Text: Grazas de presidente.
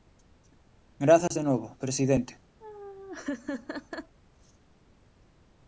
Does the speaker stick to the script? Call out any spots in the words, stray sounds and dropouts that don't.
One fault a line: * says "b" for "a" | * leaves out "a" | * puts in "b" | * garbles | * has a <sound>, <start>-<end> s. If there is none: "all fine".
* has a dropout, 1.3-1.3 s
* puts in "novo"
* has a laugh, 2.6-4.2 s